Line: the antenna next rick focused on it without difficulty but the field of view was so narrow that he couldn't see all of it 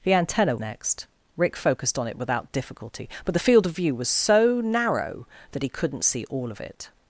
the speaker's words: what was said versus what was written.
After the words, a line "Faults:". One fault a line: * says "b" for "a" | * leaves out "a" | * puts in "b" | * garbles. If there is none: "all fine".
the antenna next rick focused on it without difficulty but the field of view was so narrow that he couldn't see all of it
Faults:
all fine